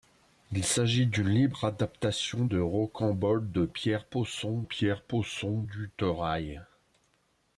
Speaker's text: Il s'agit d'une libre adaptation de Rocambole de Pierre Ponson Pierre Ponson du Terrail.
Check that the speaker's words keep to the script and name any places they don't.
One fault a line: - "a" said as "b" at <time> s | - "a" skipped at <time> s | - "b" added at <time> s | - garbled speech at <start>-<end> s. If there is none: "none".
none